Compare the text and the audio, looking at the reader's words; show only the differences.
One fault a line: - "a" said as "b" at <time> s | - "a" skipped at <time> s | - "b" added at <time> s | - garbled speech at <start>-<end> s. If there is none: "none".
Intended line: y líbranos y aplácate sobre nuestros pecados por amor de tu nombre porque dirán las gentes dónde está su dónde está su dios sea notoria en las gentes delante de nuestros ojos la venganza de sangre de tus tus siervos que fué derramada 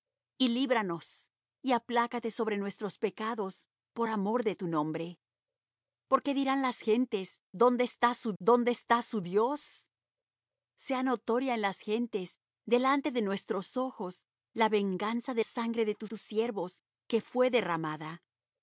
none